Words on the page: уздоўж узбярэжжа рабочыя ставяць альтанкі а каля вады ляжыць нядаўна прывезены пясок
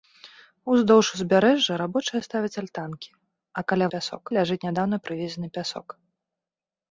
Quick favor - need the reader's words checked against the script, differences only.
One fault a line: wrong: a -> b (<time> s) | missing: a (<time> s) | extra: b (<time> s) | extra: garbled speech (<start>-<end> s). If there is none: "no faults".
wrong: вады -> пясок (4.0 s)